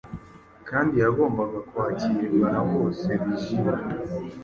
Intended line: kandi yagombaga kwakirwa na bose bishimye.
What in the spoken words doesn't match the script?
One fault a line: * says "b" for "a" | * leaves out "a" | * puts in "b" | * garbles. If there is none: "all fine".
all fine